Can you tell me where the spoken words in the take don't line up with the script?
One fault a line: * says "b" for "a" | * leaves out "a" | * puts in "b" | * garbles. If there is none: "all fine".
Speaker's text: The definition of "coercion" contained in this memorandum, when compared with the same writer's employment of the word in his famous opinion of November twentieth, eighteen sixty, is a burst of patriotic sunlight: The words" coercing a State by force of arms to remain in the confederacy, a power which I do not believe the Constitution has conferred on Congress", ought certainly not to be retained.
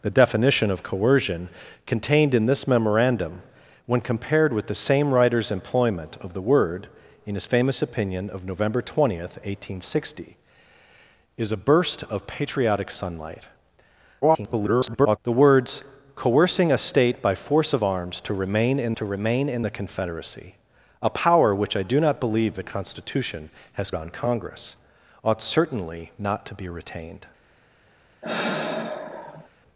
* garbles
* puts in "to remain in"
* leaves out "conferred"